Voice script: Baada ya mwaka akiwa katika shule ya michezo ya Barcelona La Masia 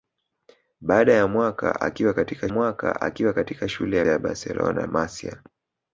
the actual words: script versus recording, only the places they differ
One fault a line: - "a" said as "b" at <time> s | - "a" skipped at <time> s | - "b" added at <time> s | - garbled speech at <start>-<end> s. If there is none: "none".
- "mwaka akiwa katika" added at 2.5 s
- "michezo" skipped at 4.0 s
- "La" skipped at 4.8 s